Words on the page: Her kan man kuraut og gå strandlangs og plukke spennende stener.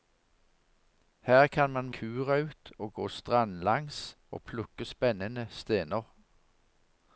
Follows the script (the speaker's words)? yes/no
yes